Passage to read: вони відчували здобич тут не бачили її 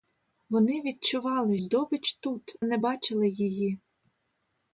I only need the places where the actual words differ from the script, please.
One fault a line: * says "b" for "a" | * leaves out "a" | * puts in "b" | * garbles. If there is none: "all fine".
all fine